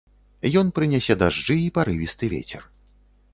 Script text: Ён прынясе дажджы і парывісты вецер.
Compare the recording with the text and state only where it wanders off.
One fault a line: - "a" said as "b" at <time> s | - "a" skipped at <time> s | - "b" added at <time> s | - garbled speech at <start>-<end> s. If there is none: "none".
none